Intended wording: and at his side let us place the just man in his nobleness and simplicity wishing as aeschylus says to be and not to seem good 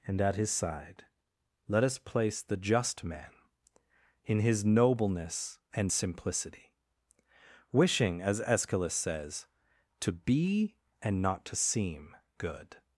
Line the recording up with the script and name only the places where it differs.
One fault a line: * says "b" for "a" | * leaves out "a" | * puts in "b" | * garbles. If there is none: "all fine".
all fine